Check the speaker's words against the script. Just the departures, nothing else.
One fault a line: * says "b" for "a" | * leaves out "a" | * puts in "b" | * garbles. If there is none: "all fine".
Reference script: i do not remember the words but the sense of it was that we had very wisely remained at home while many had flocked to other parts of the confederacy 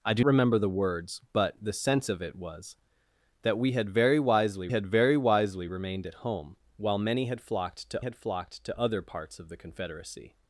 * leaves out "not"
* puts in "had very wisely"
* puts in "had flocked to"